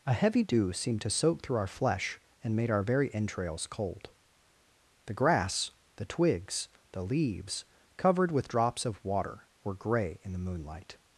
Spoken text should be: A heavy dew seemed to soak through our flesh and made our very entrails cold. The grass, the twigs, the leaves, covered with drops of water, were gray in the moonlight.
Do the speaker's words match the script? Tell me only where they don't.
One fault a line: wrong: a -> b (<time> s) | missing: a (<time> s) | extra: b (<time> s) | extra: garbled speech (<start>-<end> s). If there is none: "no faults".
no faults